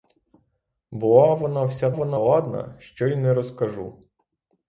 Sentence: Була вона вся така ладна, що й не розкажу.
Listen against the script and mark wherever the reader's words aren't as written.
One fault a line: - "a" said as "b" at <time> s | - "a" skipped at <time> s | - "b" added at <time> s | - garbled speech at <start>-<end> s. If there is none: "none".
- "така" said as "вона" at 1.9 s